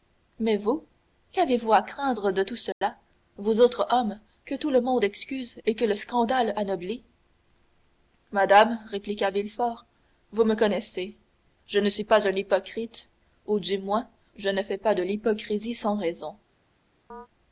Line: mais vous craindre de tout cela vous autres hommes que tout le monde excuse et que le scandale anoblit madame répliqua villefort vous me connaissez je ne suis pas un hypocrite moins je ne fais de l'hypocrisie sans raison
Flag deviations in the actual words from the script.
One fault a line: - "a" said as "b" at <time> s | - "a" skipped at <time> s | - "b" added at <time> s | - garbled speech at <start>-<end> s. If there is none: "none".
- "qu'avez vous à" added at 1.3 s
- "ou du" added at 13.5 s
- "pas" added at 14.8 s